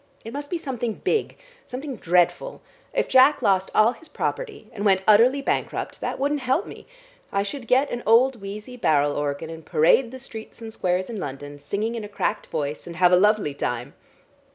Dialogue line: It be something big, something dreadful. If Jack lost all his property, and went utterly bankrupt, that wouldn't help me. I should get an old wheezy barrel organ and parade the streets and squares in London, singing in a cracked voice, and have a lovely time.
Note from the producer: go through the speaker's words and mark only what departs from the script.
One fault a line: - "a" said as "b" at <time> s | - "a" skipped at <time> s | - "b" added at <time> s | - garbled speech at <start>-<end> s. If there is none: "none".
- "must" added at 0.3 s